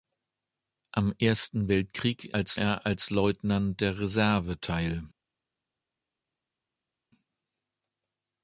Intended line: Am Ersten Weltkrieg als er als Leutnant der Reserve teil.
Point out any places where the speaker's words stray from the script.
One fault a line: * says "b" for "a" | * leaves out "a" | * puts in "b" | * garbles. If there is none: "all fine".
all fine